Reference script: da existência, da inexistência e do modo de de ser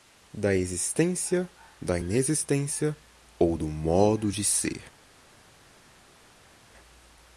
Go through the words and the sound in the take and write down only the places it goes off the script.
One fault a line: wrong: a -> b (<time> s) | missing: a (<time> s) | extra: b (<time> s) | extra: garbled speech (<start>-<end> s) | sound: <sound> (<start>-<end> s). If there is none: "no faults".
wrong: e -> ou (3.4 s)
missing: de (4.4 s)